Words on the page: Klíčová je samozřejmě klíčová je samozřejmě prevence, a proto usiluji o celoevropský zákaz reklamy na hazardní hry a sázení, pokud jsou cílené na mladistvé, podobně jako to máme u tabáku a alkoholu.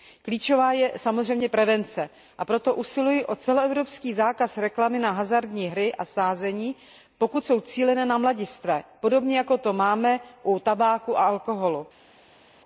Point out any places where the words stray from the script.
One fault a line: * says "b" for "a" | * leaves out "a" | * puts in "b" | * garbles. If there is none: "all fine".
* leaves out "klíčová je samozřejmě"